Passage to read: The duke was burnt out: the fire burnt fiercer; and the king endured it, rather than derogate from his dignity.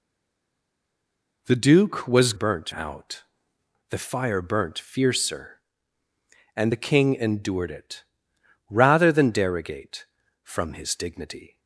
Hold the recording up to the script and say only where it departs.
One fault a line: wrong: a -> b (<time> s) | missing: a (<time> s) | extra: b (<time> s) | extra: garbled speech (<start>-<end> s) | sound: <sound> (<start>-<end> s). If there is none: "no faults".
no faults